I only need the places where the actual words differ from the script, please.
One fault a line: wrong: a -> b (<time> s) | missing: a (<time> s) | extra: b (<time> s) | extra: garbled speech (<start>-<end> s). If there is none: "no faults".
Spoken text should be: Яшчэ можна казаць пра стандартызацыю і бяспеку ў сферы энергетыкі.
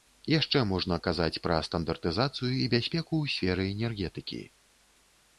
no faults